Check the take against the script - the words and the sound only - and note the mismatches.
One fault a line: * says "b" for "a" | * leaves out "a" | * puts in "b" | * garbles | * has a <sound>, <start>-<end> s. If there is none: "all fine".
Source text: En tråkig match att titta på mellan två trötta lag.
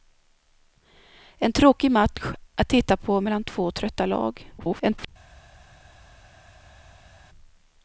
* garbles